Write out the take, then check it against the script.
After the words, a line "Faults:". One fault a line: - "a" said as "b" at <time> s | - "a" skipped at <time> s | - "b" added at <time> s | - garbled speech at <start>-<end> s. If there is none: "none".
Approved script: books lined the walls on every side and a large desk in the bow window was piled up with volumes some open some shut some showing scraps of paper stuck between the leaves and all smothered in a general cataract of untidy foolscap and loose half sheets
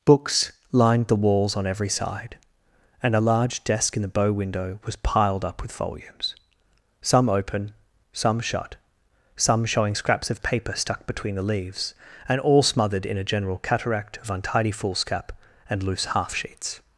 books lined the walls on every side and a large desk in the bow window was piled up with volumes some open some shut some showing scraps of paper stuck between the leaves and all smothered in a general cataract of untidy foolscap and loose half sheets
Faults:
none